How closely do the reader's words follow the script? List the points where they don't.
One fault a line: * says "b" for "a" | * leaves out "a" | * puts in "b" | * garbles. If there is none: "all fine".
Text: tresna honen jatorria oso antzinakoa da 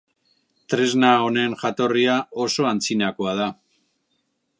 all fine